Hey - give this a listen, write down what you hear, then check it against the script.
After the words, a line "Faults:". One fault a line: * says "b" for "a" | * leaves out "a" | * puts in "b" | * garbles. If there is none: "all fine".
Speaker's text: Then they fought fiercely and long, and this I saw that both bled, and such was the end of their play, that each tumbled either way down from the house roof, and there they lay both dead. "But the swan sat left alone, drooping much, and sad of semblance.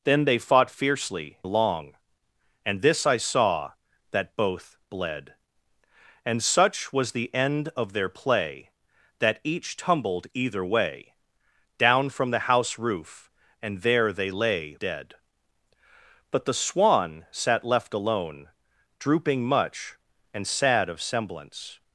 Then they fought fiercely long, and this I saw that both bled, and such was the end of their play, that each tumbled either way down from the house roof, and there they lay dead. "But the swan sat left alone, drooping much, and sad of semblance.
Faults:
* leaves out "and"
* leaves out "both"